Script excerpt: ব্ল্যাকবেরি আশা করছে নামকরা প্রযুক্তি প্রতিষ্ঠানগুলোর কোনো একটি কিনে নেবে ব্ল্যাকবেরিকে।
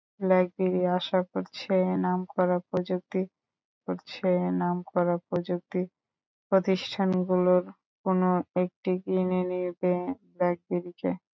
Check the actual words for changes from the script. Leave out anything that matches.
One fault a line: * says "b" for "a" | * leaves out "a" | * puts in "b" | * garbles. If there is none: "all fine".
* puts in "করছে নামকরা প্রযুক্তি"